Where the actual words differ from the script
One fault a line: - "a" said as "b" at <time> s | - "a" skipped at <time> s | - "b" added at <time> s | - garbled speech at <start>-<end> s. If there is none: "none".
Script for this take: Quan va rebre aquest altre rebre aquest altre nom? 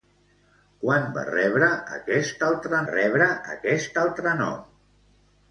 none